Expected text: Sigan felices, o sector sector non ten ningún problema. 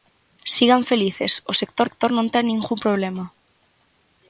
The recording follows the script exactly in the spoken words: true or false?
true